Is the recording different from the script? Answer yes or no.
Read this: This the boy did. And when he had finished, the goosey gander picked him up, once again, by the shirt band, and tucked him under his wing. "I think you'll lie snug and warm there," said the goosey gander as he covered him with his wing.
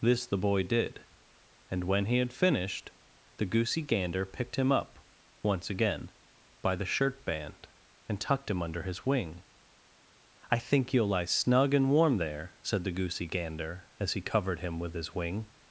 no